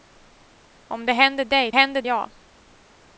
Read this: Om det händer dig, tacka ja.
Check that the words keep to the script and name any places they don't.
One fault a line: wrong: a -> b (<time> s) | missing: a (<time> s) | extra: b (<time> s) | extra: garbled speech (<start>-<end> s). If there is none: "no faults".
wrong: tacka -> händer (1.7 s)